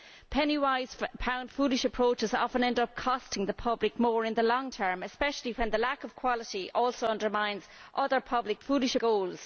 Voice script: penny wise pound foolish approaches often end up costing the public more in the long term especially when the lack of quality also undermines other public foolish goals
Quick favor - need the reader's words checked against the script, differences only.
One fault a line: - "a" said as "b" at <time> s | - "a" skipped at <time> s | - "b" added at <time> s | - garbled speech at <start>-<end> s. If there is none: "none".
none